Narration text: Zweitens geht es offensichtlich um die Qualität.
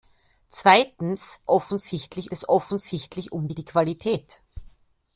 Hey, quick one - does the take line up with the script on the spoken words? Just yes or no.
no